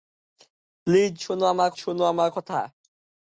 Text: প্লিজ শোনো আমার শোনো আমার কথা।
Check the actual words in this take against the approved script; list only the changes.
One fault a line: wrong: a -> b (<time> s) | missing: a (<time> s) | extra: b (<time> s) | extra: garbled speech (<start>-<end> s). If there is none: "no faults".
no faults